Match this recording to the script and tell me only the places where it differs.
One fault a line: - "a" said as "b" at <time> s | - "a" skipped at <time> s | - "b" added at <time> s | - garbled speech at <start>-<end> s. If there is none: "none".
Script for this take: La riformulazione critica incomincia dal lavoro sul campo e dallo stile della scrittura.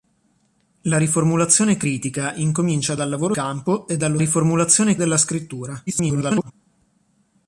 - "sul" skipped at 3.3 s
- "stile" said as "riformulazione" at 4.2 s
- garbled speech at 5.9-6.5 s